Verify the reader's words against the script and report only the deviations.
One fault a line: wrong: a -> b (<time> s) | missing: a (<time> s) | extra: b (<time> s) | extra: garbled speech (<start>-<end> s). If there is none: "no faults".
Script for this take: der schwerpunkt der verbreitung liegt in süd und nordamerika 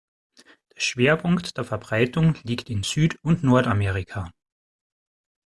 no faults